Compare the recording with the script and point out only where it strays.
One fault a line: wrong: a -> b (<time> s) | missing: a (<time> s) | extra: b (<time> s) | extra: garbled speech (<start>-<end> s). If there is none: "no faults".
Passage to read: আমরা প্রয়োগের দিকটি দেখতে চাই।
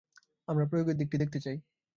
no faults